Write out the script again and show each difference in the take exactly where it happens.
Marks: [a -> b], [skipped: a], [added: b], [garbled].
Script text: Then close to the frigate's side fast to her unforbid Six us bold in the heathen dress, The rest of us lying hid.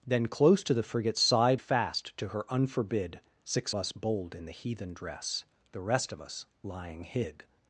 Then close to the frigate's side fast to her unforbid Six us bold in the heathen dress, The rest of us lying hid.